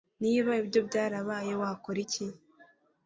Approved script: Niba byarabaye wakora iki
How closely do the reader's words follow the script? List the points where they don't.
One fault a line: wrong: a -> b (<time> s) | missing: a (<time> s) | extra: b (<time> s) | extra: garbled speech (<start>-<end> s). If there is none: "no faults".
extra: ibyo (0.6 s)